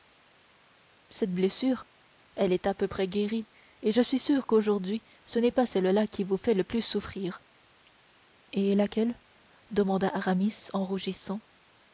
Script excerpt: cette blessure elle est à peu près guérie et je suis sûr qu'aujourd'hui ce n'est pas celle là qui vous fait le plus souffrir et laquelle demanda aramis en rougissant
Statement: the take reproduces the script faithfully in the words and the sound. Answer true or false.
true